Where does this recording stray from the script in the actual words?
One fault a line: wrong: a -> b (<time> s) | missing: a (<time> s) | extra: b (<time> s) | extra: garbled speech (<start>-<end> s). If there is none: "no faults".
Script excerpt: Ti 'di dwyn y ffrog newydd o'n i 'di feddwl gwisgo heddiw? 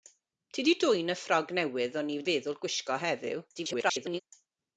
missing: di (2.2 s)
extra: garbled speech (3.5-4.2 s)